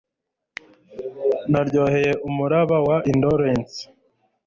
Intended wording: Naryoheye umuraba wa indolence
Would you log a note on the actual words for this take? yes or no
no